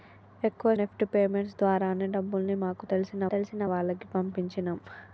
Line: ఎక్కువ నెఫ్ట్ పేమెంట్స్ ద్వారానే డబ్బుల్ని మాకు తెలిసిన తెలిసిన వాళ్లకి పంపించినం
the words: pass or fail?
pass